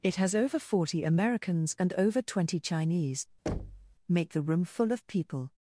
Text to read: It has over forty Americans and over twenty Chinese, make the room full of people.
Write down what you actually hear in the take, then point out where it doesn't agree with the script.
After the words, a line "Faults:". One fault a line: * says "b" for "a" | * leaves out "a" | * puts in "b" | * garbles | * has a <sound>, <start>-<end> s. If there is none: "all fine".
It has over forty Americans and over twenty Chinese, make the room full of people.
Faults:
* has a thud, 3.5-4.0 s